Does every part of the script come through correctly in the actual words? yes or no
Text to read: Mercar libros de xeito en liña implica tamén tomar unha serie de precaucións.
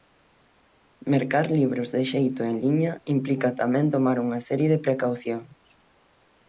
yes